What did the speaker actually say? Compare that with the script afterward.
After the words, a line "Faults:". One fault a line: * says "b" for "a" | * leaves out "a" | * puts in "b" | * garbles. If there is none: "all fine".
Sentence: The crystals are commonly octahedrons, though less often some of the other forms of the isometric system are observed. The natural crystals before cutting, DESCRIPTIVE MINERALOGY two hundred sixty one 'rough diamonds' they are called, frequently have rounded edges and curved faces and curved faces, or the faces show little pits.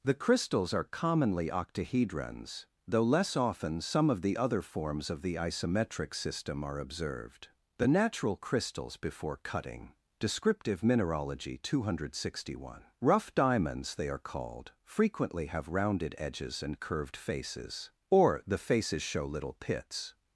The crystals are commonly octahedrons, though less often some of the other forms of the isometric system are observed. The natural crystals before cutting, DESCRIPTIVE MINERALOGY two hundred sixty one 'rough diamonds' they are called, frequently have rounded edges and curved faces, or the faces show little pits.
Faults:
* leaves out "and curved faces"